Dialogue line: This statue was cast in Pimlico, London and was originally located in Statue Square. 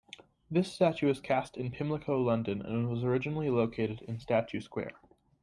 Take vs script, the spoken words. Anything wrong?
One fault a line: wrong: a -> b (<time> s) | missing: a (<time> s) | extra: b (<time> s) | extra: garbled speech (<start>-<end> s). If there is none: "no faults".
no faults